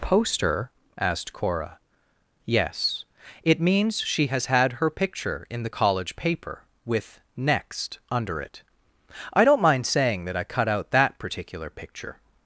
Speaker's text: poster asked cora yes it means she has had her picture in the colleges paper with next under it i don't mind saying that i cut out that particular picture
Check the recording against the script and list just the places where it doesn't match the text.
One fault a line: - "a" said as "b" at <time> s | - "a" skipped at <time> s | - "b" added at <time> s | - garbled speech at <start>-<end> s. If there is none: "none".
- "colleges" said as "college" at 5.7 s